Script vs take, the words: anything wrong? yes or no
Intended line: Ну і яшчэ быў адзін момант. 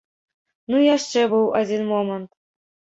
no